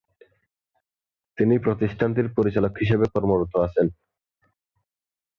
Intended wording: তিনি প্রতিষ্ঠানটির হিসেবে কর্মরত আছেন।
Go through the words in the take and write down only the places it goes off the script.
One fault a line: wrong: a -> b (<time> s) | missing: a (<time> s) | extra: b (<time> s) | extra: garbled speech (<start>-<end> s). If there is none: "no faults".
extra: পরিচালক (2.4 s)